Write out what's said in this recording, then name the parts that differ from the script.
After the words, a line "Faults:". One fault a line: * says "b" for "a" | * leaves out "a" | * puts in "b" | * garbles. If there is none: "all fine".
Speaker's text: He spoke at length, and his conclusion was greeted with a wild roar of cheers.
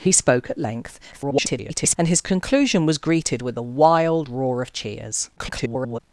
He spoke at length, [garbled] and his conclusion was greeted with a wild roar of cheers. [garbled]
Faults:
* garbles
* garbles